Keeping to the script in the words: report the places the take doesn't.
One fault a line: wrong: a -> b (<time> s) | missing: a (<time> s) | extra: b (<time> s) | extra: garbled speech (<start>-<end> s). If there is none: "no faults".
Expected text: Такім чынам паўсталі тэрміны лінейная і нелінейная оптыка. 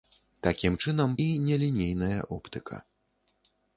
missing: паўсталі тэрміны лінейная (1.1 s)